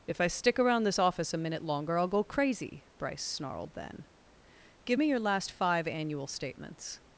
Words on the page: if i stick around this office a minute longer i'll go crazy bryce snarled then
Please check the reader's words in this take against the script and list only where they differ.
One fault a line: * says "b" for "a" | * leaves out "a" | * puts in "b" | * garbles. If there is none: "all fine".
* puts in "give me your last five annual statements"